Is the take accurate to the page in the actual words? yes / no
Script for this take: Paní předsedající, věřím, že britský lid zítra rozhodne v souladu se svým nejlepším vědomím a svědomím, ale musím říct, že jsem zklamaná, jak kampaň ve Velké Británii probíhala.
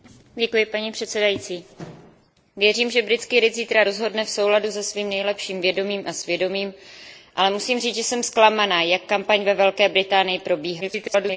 no